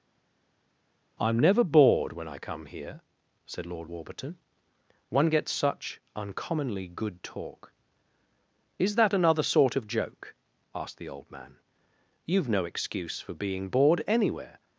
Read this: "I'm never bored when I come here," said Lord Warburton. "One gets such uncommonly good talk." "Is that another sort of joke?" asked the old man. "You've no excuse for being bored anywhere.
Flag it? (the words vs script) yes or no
no